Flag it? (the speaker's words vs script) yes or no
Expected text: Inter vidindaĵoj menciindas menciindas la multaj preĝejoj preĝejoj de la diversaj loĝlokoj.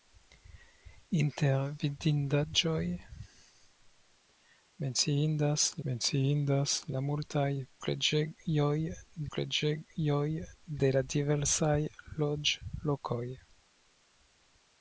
no